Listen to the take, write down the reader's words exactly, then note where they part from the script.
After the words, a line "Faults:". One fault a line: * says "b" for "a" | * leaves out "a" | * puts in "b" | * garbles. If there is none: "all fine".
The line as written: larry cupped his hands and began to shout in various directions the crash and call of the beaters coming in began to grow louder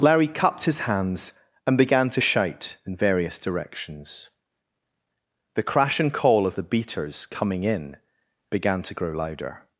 larry cupped his hands and began to shout in various directions the crash and call of the beaters coming in began to grow louder
Faults:
all fine